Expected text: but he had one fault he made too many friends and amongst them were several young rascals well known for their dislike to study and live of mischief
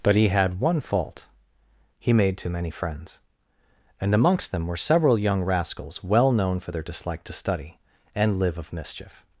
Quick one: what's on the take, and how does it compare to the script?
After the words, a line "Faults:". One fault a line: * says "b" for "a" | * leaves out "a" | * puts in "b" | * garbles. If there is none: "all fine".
but he had one fault he made too many friends and amongst them were several young rascals well known for their dislike to study and live of mischief
Faults:
all fine